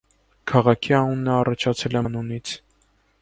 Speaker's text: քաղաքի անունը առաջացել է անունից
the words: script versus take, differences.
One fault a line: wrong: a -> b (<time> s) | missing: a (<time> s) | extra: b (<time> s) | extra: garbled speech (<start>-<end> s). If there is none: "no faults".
no faults